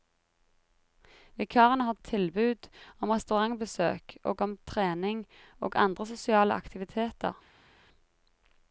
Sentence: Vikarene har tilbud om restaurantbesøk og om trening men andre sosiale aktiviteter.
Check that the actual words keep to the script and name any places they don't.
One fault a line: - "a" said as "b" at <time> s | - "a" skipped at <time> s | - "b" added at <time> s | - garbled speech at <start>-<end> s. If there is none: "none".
- "men" said as "og" at 5.6 s